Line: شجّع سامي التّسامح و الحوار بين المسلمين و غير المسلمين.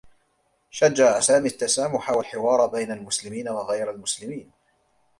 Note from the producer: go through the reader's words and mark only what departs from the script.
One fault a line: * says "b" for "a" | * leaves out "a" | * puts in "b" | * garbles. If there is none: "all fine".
all fine